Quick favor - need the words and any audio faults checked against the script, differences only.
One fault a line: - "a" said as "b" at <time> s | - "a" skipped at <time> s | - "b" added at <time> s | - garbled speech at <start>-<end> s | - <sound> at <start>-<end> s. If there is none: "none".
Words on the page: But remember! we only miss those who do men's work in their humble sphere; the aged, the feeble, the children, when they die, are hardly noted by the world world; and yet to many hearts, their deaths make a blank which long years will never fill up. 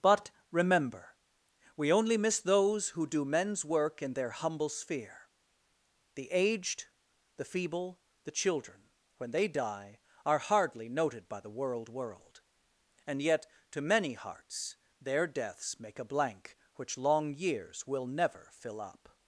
none